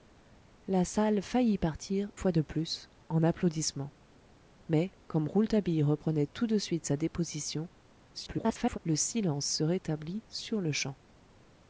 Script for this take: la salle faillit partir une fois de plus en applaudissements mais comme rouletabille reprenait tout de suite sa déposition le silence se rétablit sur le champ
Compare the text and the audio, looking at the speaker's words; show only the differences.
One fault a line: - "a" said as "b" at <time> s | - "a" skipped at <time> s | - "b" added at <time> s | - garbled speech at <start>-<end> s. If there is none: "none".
- "une" skipped at 2.1 s
- garbled speech at 8.1-8.8 s